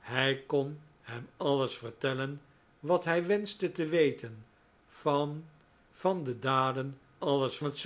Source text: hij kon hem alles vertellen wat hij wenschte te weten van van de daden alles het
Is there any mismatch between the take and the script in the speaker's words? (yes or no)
no